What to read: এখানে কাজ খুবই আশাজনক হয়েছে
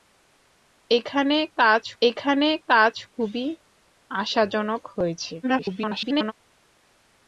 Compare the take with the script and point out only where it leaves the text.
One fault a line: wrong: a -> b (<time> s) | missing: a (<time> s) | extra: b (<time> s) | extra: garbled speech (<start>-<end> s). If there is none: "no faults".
extra: এখানে কাজ (2.0 s)
extra: garbled speech (5.4-6.3 s)